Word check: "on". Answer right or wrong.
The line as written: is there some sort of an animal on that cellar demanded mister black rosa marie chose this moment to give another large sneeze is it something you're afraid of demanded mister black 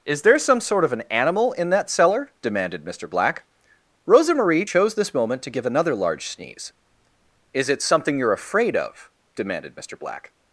wrong